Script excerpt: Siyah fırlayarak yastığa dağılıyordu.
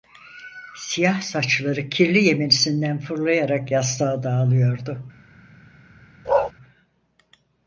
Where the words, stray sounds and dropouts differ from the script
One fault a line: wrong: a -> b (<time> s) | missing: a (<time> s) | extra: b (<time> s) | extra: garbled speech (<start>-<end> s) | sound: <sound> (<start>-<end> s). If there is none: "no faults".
extra: saçları kirli yemenisinden (1.2 s)
sound: bark (6.2-6.5 s)